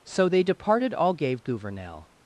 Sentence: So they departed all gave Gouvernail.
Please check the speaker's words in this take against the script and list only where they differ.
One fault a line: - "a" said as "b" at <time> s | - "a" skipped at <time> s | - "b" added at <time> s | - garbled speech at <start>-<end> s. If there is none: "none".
none